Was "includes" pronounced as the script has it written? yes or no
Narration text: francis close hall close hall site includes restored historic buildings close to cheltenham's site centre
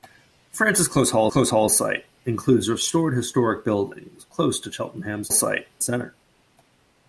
yes